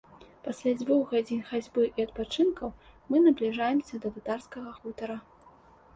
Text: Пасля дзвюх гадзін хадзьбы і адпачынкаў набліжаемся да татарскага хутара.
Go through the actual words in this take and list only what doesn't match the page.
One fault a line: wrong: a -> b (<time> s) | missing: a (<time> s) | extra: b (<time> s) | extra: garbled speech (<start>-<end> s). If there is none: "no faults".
extra: мы (3.1 s)